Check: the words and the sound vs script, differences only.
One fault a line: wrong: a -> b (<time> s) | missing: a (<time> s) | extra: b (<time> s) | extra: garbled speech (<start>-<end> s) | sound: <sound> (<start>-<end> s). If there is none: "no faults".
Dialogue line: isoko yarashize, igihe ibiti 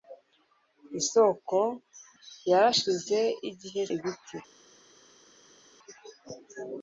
no faults